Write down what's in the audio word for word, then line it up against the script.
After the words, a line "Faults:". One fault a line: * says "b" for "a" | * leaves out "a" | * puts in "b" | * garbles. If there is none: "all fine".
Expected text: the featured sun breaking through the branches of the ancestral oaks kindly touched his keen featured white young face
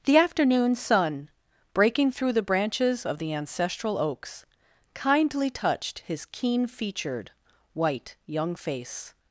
the afternoon sun breaking through the branches of the ancestral oaks kindly touched his keen featured white young face
Faults:
* says "afternoon" for "featured"